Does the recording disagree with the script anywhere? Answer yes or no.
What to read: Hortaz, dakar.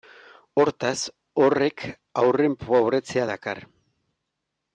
yes